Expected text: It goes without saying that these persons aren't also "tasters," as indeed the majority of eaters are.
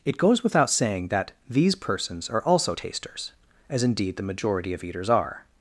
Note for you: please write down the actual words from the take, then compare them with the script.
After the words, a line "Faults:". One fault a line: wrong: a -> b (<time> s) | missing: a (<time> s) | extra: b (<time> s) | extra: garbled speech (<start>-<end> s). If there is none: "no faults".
It goes without saying that these persons are also "tasters," as indeed the majority of eaters are.
Faults:
wrong: aren't -> are (2.3 s)